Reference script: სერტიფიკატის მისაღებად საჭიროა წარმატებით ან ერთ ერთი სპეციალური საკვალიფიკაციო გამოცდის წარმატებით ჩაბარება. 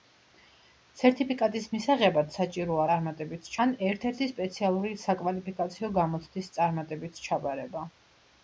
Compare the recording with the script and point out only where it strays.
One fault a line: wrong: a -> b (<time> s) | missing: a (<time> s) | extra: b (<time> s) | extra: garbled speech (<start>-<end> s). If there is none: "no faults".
no faults